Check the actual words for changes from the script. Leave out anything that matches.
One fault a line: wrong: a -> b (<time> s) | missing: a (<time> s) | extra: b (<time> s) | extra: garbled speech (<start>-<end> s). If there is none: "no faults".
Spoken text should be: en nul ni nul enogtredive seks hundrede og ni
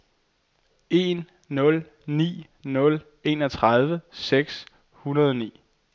no faults